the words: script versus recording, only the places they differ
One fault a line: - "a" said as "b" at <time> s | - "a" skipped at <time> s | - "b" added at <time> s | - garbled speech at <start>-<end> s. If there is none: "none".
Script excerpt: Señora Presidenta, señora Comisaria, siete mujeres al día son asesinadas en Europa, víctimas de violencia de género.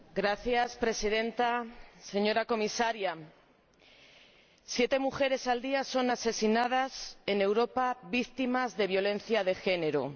none